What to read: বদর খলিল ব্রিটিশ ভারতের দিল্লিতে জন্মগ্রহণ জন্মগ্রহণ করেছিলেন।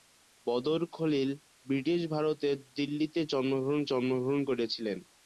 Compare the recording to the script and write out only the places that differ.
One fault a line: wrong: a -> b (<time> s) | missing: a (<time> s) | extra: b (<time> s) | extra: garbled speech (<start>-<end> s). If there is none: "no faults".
no faults